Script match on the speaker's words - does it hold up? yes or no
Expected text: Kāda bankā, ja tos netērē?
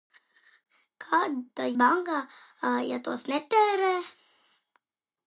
yes